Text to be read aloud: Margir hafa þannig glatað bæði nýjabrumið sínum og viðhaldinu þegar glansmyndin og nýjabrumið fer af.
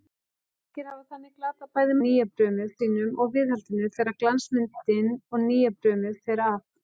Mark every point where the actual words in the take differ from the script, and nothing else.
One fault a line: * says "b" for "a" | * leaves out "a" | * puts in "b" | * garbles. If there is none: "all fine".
all fine